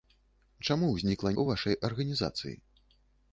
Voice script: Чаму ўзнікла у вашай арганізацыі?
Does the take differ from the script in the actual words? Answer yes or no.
no